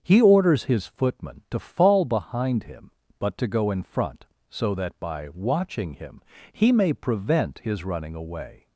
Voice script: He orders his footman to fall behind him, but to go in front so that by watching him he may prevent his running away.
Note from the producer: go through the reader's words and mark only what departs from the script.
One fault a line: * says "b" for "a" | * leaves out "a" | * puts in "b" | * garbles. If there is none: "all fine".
all fine